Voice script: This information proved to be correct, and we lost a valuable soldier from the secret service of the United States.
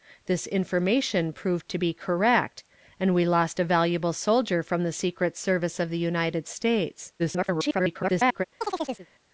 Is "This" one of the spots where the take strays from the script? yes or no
no